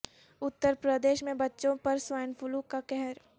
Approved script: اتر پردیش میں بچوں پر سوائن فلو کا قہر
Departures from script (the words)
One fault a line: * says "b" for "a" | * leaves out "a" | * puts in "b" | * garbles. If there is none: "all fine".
all fine